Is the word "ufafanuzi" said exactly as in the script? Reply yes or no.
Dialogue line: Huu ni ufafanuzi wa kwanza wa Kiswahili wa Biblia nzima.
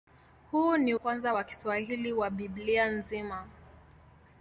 no